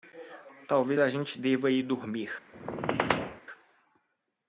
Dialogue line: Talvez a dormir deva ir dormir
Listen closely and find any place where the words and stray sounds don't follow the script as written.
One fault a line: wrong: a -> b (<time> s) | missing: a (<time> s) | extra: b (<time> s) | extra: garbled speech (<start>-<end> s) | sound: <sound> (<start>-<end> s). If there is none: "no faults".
wrong: dormir -> gente (1.1 s)
sound: squeak (2.5-3.4 s)